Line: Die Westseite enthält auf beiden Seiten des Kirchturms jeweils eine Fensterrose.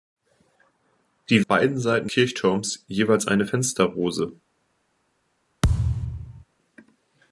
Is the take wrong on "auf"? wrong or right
wrong